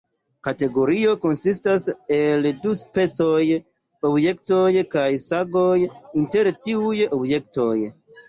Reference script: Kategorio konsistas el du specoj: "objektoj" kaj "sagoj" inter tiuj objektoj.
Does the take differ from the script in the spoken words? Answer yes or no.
no